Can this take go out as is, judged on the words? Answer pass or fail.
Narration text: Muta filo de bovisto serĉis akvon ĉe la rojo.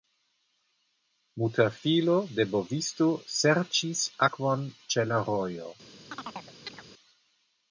pass